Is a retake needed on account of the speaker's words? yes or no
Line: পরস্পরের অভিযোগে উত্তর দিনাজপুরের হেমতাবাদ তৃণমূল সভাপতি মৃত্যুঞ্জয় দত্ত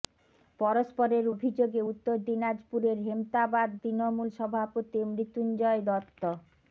no